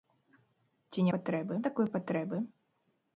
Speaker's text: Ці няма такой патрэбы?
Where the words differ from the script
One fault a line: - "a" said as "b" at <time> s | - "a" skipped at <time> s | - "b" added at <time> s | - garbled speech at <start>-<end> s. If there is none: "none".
- "няма" said as "патрэбы" at 1.2 s